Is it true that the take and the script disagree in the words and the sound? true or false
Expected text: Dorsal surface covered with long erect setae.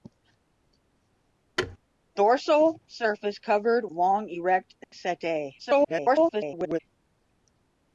true